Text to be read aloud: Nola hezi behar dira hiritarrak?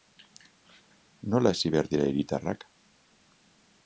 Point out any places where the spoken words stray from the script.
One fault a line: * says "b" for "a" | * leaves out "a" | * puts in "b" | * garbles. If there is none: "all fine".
all fine